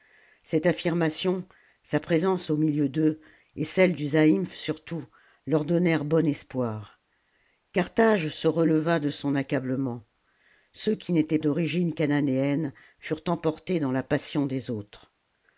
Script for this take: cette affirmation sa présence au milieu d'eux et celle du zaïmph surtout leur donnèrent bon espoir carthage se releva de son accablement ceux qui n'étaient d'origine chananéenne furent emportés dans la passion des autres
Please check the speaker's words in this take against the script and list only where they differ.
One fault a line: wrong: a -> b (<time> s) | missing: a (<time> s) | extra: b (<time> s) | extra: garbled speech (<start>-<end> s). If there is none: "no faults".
no faults